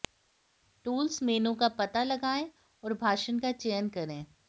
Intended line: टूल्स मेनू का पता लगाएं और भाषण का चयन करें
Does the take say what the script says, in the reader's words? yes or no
yes